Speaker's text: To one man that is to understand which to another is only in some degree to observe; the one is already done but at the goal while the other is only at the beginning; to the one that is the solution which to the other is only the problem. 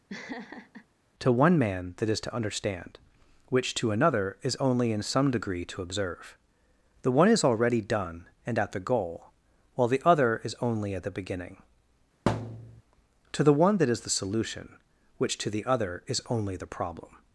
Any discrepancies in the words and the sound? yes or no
yes